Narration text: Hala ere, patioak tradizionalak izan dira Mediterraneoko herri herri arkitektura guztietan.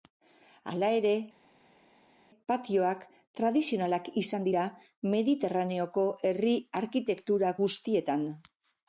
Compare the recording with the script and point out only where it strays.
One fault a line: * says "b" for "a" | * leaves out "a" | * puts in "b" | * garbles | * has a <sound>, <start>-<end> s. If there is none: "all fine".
* leaves out "herri"